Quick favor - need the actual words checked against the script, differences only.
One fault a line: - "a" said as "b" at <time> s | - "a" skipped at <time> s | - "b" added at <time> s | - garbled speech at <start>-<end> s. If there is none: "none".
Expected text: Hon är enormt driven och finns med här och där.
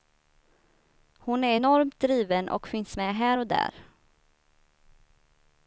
none